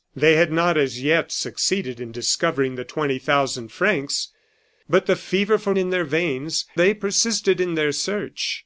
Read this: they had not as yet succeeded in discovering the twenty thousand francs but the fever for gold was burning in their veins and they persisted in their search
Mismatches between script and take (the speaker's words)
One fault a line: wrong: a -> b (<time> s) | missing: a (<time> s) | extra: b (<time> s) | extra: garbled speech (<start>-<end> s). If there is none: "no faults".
missing: gold was burning (5.7 s)
missing: and (6.6 s)